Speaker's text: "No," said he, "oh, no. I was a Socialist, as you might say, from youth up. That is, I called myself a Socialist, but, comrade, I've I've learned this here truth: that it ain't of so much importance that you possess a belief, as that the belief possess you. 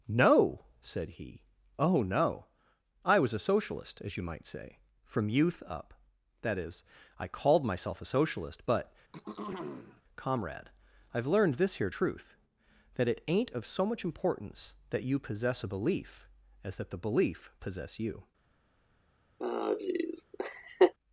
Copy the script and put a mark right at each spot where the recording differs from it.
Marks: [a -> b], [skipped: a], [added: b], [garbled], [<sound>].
"No," said he, "oh, no. I was a Socialist, as you might say, from youth up. That is, I called myself a Socialist, but, [throat clearing] comrade, I've [skipped: I've] learned this here truth: that it ain't of so much importance that you possess a belief, as that the belief possess you. [laugh]